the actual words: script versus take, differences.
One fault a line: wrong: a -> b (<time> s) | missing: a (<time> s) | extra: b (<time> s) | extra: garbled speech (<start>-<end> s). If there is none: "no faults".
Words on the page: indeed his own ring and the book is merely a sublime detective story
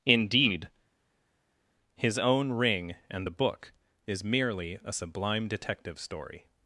no faults